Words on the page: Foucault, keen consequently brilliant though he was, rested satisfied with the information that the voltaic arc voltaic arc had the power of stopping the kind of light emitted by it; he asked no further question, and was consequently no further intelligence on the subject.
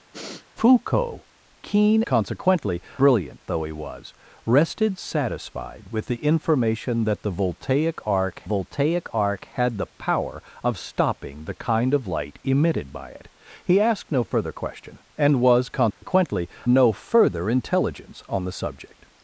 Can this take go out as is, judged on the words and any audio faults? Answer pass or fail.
fail